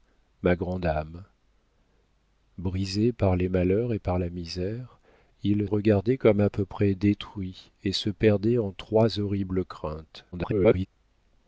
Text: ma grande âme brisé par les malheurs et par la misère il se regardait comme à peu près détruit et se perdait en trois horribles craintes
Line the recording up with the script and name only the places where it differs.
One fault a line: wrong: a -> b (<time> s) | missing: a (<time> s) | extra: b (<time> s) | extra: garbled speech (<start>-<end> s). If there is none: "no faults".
missing: se (5.7 s)
extra: garbled speech (10.3-10.9 s)